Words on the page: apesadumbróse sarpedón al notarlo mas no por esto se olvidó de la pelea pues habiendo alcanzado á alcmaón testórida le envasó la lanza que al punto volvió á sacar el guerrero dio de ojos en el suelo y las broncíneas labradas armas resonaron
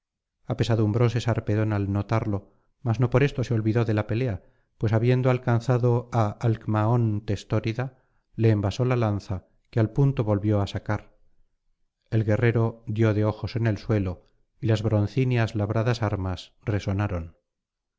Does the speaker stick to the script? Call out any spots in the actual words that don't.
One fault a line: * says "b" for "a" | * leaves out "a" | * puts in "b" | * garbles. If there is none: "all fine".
all fine